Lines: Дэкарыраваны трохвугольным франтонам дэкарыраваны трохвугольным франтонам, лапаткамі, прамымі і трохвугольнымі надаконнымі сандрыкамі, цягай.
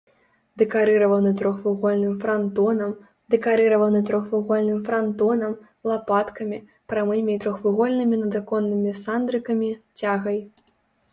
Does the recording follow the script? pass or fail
pass